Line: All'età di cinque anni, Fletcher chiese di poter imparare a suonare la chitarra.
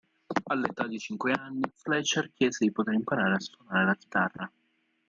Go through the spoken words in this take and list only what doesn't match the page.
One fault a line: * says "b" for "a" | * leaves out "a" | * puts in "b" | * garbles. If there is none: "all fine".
all fine